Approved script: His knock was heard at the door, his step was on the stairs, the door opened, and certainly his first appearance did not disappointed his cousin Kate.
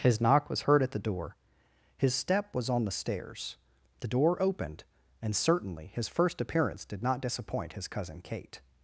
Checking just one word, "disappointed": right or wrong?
wrong